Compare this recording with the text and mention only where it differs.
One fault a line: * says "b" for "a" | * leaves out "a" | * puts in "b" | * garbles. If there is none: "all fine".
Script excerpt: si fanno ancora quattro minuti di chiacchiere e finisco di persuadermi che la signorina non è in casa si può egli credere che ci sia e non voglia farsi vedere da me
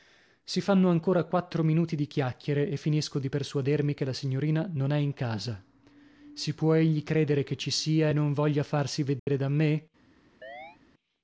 all fine